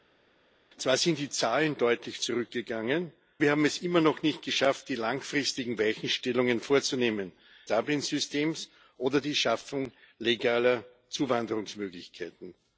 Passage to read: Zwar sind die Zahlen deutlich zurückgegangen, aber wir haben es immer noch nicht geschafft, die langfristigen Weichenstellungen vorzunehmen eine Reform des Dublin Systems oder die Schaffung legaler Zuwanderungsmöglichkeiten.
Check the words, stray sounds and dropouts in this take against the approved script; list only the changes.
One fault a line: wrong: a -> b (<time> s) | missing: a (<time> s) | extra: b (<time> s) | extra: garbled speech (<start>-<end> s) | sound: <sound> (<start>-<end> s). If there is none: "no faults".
missing: aber (3.1 s)
missing: eine Reform des (7.3 s)